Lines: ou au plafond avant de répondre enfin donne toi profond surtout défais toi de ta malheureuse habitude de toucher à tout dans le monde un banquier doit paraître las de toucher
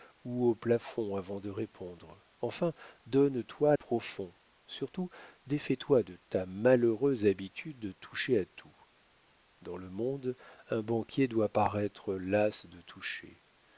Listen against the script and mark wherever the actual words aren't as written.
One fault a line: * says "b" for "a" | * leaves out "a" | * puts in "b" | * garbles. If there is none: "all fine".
all fine